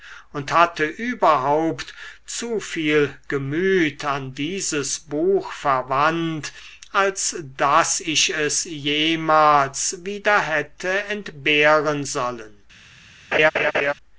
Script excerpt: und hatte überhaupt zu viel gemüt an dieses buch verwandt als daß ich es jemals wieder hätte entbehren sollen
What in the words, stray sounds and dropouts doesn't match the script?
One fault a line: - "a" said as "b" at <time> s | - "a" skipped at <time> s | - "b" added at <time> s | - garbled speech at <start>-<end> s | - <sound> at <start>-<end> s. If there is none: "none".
- laugh at 13.3-13.9 s